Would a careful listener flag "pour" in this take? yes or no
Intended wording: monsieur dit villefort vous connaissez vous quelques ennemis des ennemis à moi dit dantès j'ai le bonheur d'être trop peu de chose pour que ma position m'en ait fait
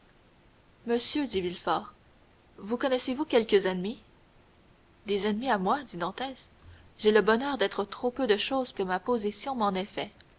yes